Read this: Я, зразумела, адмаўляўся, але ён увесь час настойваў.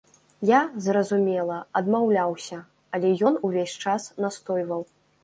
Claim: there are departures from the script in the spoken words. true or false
false